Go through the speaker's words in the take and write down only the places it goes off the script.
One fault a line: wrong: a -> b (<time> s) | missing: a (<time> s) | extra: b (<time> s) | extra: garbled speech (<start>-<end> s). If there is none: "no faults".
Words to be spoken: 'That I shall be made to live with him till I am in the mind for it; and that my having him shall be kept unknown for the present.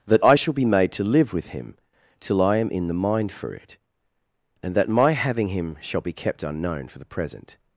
no faults